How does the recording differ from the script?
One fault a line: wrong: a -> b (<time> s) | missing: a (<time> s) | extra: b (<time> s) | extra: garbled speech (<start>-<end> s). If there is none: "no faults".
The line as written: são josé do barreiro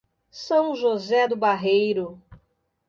no faults